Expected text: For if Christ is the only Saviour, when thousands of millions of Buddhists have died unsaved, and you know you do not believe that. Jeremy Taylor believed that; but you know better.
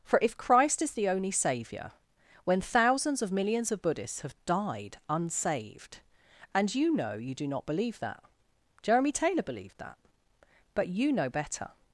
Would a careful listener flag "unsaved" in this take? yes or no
no